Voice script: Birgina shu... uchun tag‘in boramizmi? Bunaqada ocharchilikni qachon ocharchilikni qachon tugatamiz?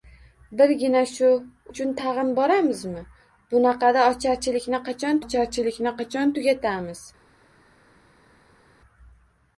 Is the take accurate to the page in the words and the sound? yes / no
yes